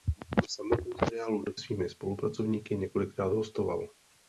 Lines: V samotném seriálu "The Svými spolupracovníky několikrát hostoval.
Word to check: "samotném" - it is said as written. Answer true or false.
true